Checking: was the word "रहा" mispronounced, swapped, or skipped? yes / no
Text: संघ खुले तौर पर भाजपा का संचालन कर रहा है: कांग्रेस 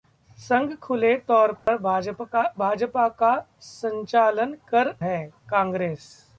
yes